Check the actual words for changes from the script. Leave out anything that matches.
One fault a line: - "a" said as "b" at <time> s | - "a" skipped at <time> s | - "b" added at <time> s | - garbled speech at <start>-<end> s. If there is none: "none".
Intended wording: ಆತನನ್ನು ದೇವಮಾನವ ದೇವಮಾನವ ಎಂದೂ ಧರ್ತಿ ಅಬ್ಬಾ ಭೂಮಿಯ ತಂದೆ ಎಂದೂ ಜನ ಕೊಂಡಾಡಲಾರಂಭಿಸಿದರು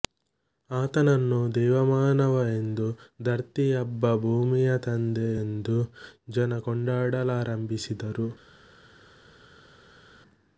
- "ದೇವಮಾನವ" skipped at 2.4 s